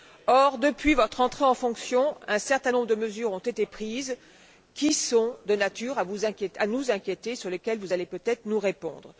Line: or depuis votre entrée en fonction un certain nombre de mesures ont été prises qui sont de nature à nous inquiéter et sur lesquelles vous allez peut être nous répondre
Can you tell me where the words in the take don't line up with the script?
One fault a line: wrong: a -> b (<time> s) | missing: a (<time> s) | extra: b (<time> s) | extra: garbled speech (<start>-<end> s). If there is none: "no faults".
no faults